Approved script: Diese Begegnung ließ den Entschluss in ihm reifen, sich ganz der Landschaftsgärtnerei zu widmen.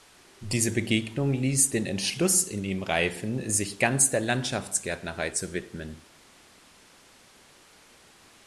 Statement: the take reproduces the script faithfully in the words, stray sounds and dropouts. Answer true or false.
true